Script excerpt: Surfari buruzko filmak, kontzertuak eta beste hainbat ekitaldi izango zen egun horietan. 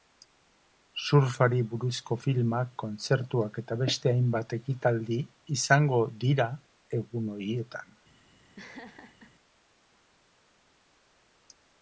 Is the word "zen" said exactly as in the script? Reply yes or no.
no